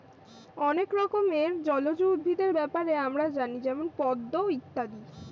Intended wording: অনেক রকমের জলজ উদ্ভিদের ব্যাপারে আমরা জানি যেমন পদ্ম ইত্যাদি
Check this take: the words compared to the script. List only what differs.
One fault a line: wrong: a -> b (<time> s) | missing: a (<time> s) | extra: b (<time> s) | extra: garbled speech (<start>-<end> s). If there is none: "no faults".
no faults